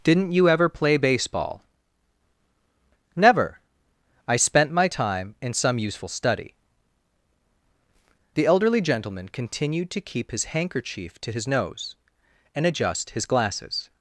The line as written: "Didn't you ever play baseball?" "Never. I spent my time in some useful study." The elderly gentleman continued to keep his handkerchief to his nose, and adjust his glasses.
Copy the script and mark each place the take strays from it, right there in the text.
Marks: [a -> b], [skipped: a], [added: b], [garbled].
"Didn't you ever play baseball?" "Never. I spent my time in some useful study." The elderly gentleman continued to keep his handkerchief to his nose, and adjust his glasses.